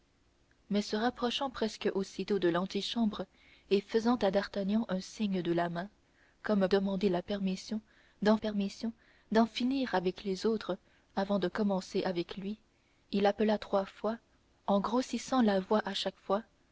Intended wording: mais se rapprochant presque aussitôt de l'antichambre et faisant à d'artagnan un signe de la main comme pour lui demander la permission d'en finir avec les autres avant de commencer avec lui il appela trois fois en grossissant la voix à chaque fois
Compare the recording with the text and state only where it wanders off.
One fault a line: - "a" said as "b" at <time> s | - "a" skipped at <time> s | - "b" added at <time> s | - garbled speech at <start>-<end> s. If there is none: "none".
- "pour lui demander la" said as "demander la permission d'en" at 6.7 s